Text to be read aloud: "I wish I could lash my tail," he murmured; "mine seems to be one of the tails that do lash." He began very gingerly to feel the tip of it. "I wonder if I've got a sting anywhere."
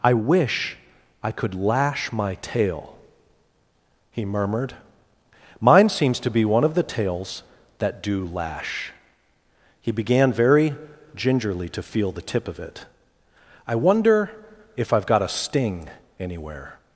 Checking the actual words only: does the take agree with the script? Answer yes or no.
yes